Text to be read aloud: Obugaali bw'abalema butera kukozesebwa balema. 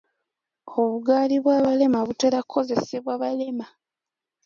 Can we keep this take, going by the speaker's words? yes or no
yes